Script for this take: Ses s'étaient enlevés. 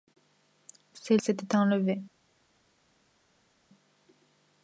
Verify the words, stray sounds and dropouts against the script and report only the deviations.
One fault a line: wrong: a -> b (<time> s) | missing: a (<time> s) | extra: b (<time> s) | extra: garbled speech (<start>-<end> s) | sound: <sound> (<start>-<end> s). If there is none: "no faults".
no faults